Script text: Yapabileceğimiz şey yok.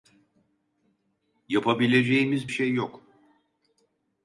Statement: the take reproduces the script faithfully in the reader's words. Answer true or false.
true